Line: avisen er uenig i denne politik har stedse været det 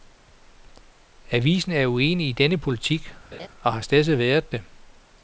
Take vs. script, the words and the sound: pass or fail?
fail